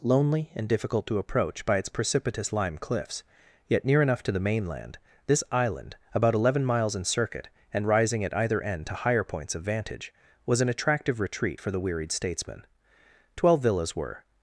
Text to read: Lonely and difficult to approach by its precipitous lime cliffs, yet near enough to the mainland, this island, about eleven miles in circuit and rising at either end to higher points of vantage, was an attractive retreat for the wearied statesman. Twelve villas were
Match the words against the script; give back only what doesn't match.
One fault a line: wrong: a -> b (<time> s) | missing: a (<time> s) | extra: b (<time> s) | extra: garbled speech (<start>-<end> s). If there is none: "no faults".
no faults